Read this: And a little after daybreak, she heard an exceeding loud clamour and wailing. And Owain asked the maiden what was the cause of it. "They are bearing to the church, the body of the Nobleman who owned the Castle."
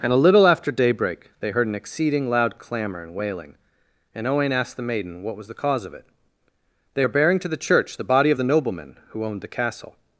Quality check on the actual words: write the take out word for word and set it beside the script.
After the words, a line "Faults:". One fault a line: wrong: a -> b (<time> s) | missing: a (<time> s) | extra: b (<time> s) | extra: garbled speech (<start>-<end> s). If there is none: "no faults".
And a little after daybreak, they heard an exceeding loud clamour and wailing. And Owain asked the maiden what was the cause of it. "They are bearing to the church, the body of the Nobleman who owned the Castle."
Faults:
wrong: she -> they (1.4 s)